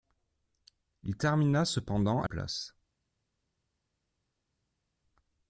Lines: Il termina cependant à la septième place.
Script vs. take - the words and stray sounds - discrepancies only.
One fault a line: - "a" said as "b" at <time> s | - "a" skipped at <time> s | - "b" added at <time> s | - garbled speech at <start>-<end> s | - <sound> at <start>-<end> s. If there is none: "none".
- "la septième" skipped at 2.3 s